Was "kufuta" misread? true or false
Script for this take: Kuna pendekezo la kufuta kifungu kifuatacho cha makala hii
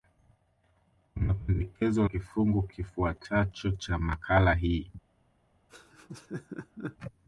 true